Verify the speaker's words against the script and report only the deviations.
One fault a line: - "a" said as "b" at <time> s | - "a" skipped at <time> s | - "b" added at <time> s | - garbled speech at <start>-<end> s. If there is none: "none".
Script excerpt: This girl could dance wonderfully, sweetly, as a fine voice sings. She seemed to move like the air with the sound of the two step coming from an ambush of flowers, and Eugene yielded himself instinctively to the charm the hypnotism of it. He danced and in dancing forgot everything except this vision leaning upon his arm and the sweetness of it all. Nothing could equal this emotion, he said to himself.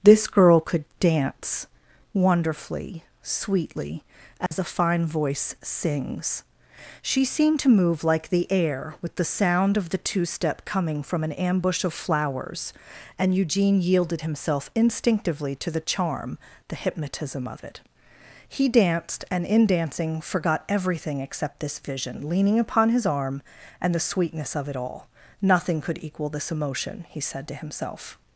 none